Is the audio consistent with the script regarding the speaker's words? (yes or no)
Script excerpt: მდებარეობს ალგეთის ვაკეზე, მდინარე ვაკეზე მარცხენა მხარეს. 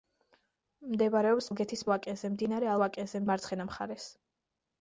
yes